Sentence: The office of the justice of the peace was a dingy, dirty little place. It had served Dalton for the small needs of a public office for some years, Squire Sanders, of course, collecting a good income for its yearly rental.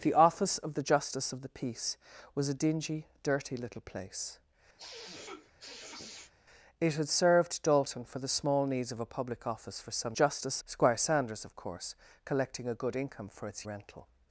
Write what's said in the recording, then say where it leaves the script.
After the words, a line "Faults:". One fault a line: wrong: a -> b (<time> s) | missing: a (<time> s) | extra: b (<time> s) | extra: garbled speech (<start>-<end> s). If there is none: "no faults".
The office of the justice of the peace was a dingy, dirty little place. It had served Dalton for the small needs of a public office for some justice, Squire Sanders, of course, collecting a good income for its rental.
Faults:
wrong: years -> justice (10.1 s)
missing: yearly (13.7 s)